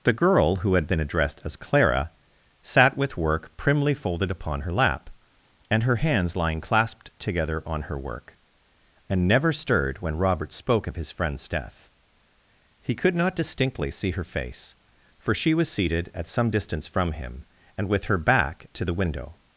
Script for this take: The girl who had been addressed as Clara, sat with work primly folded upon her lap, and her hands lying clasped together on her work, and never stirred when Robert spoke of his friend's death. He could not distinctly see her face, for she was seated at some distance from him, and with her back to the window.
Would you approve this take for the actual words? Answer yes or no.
yes